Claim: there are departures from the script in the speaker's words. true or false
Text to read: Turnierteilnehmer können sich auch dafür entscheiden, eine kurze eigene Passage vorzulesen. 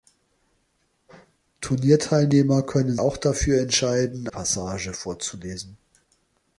true